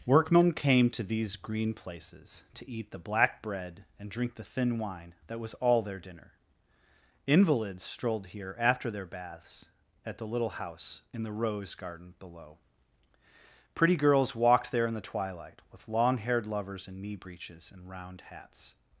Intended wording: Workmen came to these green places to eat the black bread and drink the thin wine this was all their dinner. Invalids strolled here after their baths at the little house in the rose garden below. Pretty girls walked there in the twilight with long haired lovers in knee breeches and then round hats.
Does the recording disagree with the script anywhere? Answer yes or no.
yes